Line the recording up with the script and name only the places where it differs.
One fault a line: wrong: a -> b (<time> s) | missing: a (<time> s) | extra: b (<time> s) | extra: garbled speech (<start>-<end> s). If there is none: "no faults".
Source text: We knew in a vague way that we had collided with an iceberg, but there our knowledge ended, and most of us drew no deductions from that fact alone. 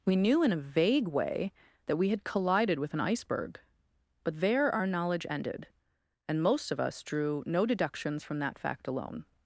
no faults